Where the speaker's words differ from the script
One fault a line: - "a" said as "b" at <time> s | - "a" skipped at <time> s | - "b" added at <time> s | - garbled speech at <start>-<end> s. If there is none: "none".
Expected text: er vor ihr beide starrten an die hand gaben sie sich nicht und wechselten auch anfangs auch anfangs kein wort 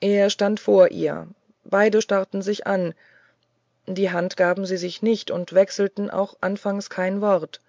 - "stand" added at 0.3 s
- "sich" added at 2.4 s
- "auch anfangs" skipped at 6.9 s